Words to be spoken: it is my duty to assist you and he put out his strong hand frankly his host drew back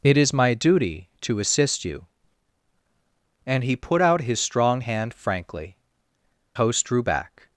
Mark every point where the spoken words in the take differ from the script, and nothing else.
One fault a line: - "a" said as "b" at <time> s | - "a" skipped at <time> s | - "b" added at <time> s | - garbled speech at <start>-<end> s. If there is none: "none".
- "his" skipped at 5.8 s